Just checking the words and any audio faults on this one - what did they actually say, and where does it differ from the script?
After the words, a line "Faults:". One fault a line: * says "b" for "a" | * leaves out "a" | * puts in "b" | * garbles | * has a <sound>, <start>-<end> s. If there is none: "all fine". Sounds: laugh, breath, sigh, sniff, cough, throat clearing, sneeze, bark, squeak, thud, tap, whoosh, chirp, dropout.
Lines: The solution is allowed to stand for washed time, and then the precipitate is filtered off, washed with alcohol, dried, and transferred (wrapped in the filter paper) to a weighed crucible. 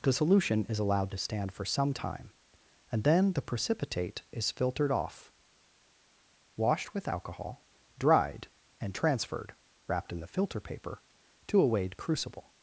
The solution is allowed to stand for some time, and then the precipitate is filtered off, washed with alcohol, dried, and transferred (wrapped in the filter paper) to a weighed crucible.
Faults:
* says "some" for "washed"